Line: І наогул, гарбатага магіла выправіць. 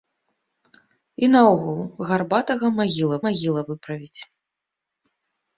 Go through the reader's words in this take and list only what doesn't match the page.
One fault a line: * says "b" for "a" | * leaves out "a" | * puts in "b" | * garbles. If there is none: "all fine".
* puts in "магіла"